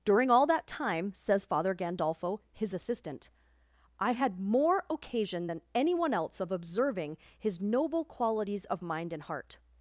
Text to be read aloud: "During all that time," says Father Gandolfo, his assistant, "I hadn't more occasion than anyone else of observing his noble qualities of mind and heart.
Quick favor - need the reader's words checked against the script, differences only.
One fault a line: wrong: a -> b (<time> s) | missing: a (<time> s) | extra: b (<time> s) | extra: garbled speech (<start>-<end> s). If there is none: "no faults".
wrong: hadn't -> had (4.1 s)